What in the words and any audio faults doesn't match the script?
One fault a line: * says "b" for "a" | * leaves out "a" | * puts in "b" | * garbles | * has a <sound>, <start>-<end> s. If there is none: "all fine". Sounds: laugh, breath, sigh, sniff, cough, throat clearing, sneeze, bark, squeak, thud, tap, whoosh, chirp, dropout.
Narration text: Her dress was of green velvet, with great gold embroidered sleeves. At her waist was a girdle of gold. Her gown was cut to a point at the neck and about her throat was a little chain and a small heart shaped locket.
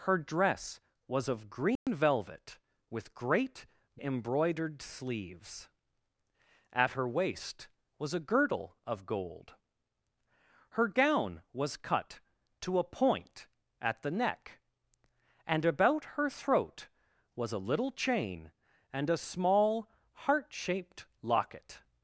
* has a dropout, 1.8-1.9 s
* leaves out "gold"